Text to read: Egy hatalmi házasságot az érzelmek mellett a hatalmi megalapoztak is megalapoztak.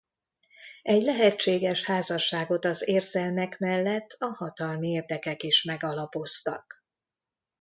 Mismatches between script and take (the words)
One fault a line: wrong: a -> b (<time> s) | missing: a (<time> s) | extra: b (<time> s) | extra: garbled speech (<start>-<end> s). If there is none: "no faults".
wrong: hatalmi -> lehetséges (1.0 s)
wrong: megalapoztak -> érdekek (4.9 s)